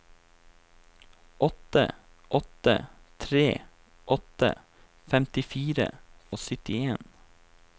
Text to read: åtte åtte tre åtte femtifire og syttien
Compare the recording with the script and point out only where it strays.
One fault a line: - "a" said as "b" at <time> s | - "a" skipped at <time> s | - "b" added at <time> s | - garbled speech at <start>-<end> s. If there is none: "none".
none